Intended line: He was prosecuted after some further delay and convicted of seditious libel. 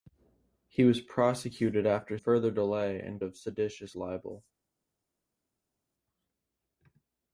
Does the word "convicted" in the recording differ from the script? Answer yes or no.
yes